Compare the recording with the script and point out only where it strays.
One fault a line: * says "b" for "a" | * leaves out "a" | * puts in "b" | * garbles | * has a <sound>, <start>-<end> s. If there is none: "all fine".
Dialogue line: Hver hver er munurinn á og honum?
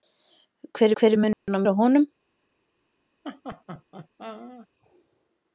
* has a dropout, 1.3-1.5 s
* has a laugh, 3.2-4.7 s